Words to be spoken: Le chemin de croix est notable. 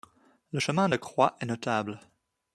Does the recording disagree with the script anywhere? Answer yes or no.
no